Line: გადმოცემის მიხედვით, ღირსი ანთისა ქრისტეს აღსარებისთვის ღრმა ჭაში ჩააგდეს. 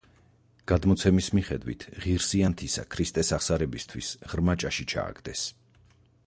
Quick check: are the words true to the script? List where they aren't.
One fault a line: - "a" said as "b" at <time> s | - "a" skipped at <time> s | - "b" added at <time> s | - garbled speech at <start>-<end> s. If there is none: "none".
none